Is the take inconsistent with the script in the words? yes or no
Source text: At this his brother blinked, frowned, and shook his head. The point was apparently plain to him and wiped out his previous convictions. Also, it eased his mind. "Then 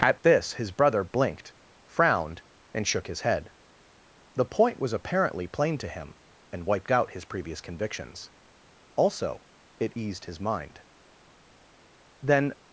no